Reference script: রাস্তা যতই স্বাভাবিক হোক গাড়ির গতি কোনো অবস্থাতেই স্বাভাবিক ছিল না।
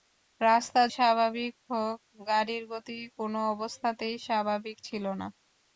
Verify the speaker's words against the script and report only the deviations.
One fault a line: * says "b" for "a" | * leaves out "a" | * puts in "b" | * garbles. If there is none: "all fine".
* leaves out "যতই"